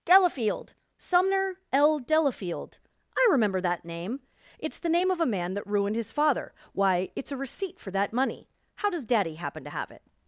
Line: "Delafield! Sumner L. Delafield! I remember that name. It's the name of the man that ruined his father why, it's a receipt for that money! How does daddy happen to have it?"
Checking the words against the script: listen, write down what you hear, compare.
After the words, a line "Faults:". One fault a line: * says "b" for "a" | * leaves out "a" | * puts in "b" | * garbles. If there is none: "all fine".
"Delafield! Sumner L. Delafield! I remember that name. It's the name of a man that ruined his father why, it's a receipt for that money! How does daddy happen to have it?"
Faults:
* says "a" for "the"